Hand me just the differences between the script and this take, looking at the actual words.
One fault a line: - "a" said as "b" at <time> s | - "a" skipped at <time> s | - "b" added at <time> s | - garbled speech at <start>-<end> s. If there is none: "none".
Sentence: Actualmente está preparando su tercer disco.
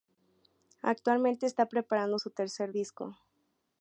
none